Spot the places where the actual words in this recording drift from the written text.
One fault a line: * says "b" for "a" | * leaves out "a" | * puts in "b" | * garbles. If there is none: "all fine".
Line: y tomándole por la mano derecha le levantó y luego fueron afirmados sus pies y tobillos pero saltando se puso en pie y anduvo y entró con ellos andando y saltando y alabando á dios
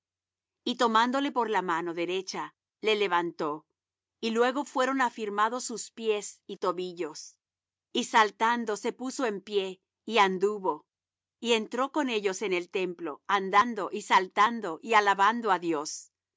* says "y" for "pero"
* puts in "en el templo"